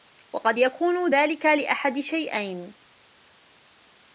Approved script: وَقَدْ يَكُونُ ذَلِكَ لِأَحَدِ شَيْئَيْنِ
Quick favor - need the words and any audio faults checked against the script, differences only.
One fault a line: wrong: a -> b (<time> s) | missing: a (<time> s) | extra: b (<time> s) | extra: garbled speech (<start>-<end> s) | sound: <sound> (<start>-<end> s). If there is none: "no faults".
no faults